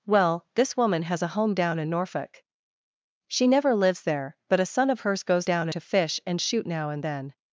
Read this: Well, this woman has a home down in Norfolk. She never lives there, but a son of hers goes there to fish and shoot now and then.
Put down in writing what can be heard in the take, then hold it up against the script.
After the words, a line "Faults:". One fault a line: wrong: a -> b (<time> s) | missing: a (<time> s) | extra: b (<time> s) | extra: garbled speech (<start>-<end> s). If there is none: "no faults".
Well, this woman has a home down in Norfolk. She never lives there, but a son of hers goes down to fish and shoot now and then.
Faults:
wrong: there -> down (5.4 s)